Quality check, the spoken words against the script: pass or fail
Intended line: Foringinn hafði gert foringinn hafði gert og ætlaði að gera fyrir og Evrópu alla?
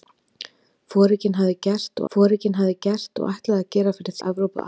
pass